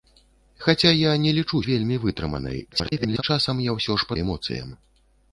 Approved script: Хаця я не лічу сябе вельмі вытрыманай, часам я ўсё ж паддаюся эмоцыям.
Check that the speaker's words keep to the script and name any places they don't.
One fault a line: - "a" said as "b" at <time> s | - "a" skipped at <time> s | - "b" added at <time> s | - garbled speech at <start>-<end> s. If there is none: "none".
- "сябе" skipped at 1.6 s
- garbled speech at 2.7-3.2 s
- "паддаюся" skipped at 4.1 s